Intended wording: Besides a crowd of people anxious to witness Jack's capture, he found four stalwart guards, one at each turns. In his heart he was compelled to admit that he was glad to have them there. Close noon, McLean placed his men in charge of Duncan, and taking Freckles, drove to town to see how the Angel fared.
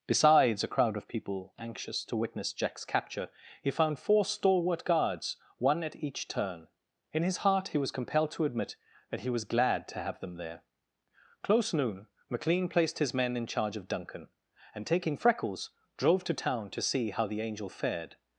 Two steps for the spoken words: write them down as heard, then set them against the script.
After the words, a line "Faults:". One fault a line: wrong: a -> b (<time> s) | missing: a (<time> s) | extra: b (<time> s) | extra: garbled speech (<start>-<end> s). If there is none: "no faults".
Besides a crowd of people anxious to witness Jack's capture, he found four stalwart guards, one at each turn. In his heart he was compelled to admit that he was glad to have them there. Close noon, McLean placed his men in charge of Duncan, and taking Freckles, drove to town to see how the Angel fared.
Faults:
wrong: turns -> turn (6.3 s)